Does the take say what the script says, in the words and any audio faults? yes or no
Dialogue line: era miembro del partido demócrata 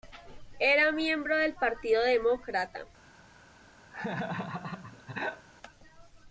no